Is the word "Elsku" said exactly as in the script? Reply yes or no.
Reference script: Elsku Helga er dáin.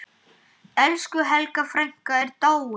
yes